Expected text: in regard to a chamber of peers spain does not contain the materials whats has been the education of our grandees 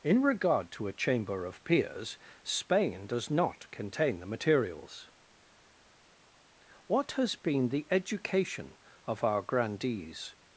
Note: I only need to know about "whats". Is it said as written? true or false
false